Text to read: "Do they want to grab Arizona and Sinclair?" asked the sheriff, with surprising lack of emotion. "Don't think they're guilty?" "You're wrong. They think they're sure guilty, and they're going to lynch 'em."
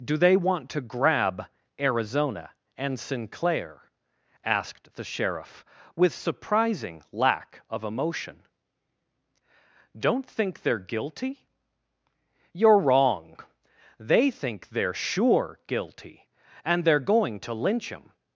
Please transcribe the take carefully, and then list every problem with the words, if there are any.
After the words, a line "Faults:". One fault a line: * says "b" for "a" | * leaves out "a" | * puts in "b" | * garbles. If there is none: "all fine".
"Do they want to grab Arizona and Sinclair?" asked the sheriff, with surprising lack of emotion. "Don't think they're guilty?" "You're wrong. They think they're sure guilty, and they're going to lynch 'em."
Faults:
all fine